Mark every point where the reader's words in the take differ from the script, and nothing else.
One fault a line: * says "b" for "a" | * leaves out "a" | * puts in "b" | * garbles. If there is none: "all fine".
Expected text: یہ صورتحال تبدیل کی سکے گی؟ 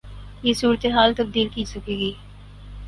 all fine